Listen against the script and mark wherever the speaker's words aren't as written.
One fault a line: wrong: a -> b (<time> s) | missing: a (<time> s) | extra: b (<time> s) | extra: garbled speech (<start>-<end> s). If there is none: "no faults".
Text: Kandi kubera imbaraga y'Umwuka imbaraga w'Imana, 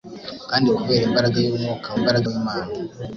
no faults